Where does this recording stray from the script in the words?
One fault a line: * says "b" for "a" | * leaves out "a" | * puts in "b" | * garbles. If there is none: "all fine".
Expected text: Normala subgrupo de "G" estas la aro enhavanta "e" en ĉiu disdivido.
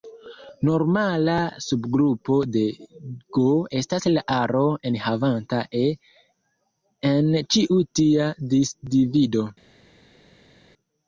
* puts in "tia"